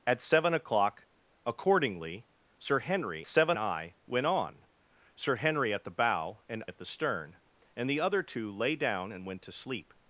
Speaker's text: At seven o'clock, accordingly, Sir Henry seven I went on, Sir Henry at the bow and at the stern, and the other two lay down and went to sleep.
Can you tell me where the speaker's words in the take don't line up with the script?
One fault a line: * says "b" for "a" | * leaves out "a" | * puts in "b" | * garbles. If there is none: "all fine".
all fine